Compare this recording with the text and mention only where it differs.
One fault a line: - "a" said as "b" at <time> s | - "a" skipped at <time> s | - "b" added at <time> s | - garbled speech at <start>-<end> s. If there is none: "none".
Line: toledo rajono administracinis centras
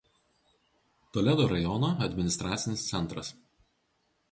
none